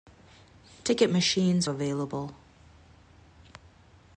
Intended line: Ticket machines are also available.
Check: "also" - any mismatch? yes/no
yes